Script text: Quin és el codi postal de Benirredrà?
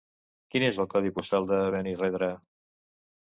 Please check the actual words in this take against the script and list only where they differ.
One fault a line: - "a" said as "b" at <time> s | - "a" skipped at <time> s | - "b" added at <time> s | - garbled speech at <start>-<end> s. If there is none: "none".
none